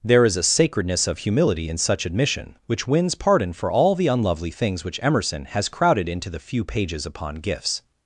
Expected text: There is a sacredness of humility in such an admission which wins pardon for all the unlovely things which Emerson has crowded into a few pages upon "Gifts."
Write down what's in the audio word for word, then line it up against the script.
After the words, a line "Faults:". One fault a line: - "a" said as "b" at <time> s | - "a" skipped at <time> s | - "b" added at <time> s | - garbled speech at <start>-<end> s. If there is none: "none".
There is a sacredness of humility in such admission which wins pardon for all the unlovely things which Emerson has crowded into the few pages upon "Gifts."
Faults:
- "an" skipped at 2.1 s
- "a" said as "the" at 6.3 s